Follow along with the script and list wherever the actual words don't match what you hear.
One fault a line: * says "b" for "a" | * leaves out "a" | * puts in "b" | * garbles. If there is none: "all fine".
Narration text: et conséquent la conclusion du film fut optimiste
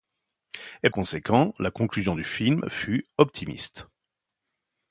all fine